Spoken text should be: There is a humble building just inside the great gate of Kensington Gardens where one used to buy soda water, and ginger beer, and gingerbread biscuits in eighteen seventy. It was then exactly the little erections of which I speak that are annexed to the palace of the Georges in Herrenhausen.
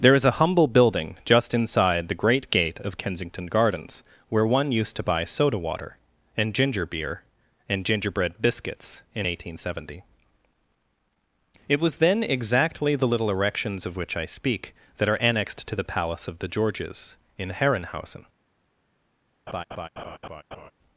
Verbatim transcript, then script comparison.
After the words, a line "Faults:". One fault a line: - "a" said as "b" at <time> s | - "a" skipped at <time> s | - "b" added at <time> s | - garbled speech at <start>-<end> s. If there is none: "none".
There is a humble building just inside the great gate of Kensington Gardens where one used to buy soda water, and ginger beer, and gingerbread biscuits in eighteen seventy. It was then exactly the little erections of which I speak that are annexed to the palace of the Georges in Herrenhausen.
Faults:
none